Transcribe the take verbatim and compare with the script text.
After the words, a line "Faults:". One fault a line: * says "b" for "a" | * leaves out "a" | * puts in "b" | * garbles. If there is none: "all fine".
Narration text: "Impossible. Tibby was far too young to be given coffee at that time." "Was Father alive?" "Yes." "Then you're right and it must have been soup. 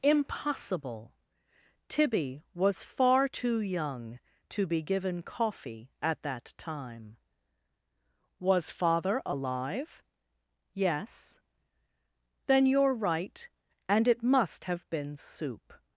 "Impossible. Tibby was far too young to be given coffee at that time." "Was Father alive?" "Yes." "Then you're right and it must have been soup.
Faults:
all fine